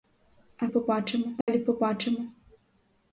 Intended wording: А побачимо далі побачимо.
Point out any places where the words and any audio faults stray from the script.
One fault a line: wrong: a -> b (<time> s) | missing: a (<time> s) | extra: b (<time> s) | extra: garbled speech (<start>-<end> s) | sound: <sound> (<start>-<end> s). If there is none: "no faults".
sound: dropout (1.4-1.5 s)